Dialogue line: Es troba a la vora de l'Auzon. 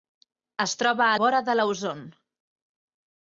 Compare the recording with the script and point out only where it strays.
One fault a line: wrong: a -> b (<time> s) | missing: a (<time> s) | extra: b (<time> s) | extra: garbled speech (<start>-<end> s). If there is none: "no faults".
missing: la (1.2 s)